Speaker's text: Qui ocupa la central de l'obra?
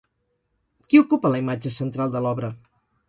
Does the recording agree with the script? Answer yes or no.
no